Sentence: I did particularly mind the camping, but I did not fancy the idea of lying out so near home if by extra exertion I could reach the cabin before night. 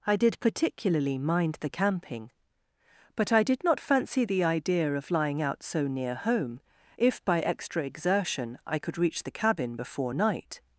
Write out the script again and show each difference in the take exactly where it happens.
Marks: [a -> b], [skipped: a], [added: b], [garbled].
I did particularly mind the camping, but I did not fancy the idea of lying out so near home if by extra exertion I could reach the cabin before night.